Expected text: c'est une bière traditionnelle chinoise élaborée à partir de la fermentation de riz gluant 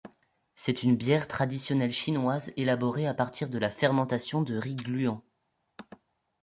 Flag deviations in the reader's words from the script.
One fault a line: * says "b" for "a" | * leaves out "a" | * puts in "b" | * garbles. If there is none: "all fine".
all fine